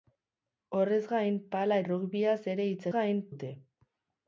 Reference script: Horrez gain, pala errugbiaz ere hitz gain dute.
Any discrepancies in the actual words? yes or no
no